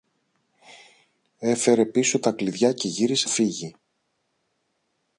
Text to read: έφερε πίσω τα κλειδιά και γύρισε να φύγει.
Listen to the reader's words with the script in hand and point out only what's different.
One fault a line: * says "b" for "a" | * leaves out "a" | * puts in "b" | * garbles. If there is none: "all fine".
* leaves out "να"